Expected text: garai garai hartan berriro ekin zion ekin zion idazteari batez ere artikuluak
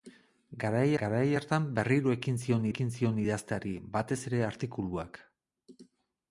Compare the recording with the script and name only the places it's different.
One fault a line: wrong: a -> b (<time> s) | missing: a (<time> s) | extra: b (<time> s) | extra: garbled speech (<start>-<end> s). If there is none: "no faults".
no faults